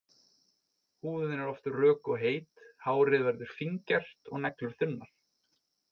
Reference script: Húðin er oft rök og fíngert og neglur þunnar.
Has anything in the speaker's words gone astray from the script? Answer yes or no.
yes